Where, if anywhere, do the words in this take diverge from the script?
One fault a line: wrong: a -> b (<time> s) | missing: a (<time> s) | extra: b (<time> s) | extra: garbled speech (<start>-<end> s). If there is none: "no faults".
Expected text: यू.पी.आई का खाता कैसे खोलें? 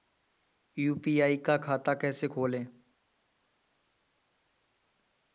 no faults